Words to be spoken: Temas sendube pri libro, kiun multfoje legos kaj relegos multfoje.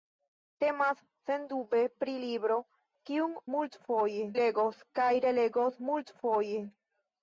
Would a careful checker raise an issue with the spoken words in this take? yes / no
no